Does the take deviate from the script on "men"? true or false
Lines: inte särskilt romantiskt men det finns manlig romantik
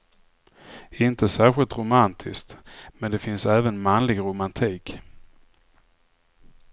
false